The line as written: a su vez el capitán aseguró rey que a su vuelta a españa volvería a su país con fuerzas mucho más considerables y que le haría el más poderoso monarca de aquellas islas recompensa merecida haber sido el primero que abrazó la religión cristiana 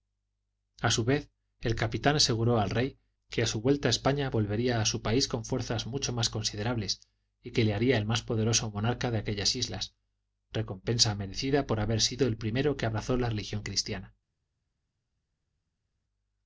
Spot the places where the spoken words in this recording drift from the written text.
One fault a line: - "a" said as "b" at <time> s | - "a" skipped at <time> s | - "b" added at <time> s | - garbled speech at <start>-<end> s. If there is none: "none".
- "al" added at 2.6 s
- "por" added at 11.7 s